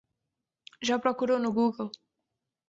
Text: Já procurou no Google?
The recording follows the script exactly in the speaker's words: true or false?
true